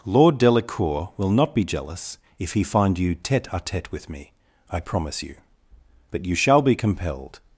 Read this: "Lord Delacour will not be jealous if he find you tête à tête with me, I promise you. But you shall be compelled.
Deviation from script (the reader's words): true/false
false